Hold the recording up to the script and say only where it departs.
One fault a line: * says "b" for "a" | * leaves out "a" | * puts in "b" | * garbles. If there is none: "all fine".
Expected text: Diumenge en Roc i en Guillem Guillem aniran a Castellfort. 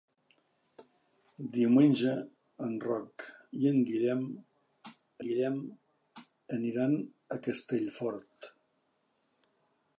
all fine